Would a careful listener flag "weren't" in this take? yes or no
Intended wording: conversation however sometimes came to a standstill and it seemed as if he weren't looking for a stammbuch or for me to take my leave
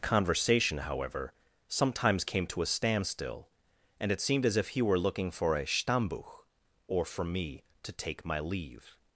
yes